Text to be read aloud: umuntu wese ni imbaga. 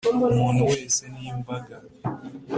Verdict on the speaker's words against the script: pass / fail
pass